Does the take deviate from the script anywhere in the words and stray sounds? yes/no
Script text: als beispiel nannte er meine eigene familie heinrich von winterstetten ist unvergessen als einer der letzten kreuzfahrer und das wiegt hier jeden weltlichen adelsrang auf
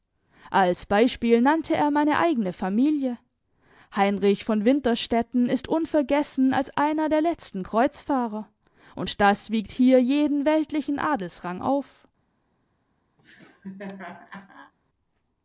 yes